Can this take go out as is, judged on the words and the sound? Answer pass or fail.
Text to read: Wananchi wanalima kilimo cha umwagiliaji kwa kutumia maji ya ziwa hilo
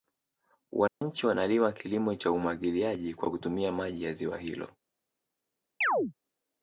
fail